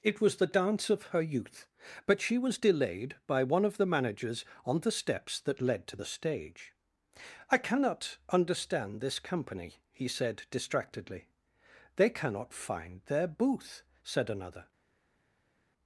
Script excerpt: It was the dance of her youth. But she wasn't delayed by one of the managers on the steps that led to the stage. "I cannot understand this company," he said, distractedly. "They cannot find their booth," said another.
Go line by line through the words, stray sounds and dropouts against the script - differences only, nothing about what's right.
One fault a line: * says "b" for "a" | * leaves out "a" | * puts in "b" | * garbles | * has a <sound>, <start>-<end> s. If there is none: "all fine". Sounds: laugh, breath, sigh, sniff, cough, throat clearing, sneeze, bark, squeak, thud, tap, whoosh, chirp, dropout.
* says "was" for "wasn't"